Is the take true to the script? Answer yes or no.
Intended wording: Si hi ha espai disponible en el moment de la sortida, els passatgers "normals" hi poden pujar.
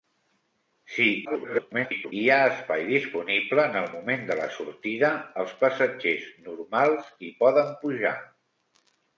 no